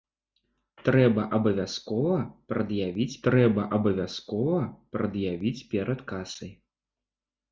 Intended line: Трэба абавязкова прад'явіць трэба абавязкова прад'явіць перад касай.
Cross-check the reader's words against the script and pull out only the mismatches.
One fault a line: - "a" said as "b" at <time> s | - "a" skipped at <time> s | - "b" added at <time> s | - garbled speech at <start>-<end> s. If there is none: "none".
none